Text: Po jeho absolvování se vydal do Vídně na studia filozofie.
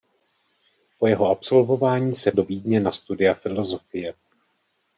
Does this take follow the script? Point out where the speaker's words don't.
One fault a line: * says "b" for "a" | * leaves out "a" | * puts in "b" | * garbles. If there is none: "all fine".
* leaves out "vydal"